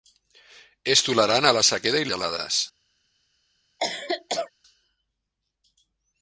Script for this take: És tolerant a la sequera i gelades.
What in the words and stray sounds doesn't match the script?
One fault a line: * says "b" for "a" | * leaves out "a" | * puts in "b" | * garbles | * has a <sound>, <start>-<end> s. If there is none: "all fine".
* has a cough, 3.8-4.5 s